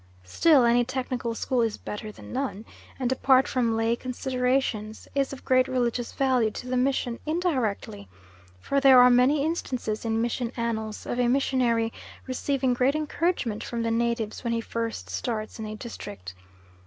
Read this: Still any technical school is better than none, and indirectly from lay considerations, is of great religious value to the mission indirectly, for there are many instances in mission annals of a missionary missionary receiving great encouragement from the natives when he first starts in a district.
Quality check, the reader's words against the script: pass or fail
fail